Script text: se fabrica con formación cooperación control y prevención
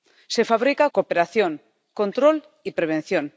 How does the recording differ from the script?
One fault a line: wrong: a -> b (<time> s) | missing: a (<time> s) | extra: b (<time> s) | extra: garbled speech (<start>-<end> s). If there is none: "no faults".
missing: con formación (0.8 s)